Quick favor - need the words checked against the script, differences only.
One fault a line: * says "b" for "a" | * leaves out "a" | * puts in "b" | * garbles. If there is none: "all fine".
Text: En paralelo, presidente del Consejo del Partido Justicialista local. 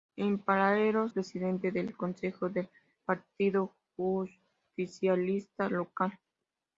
all fine